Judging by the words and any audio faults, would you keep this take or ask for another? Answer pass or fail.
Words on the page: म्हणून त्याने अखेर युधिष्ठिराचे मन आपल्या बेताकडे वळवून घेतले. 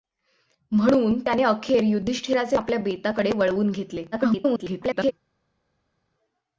fail